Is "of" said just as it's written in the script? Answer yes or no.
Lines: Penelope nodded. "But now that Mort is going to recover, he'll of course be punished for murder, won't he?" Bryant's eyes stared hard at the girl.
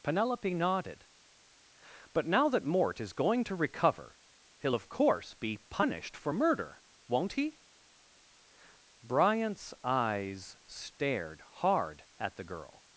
yes